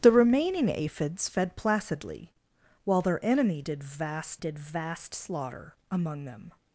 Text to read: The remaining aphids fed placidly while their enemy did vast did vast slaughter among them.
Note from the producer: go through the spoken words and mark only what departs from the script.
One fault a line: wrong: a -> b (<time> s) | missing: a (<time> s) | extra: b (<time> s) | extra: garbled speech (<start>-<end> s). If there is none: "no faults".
no faults